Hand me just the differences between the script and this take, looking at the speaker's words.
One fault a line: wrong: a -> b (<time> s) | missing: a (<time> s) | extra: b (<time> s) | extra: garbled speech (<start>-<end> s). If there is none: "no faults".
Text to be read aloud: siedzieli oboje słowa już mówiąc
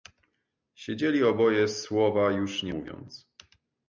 extra: nie (2.6 s)